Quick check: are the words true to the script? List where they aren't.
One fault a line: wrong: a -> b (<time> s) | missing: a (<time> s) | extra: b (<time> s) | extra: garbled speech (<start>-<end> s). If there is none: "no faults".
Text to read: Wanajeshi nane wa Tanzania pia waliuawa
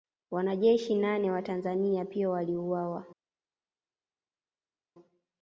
no faults